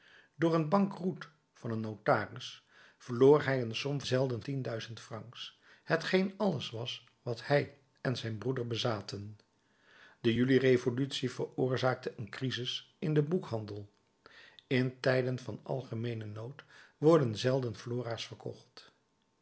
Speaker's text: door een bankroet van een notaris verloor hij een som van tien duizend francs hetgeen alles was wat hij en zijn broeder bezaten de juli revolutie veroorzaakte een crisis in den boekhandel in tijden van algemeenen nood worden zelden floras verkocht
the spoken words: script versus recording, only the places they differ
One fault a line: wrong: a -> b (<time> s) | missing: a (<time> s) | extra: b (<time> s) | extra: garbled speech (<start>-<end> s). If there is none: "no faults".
wrong: van -> zelden (4.0 s)